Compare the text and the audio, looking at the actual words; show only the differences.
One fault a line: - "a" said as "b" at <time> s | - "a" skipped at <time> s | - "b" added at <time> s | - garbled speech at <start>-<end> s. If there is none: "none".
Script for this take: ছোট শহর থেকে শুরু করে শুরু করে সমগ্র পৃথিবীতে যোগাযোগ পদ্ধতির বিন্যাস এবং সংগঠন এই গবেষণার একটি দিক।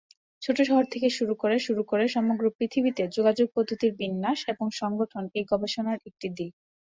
none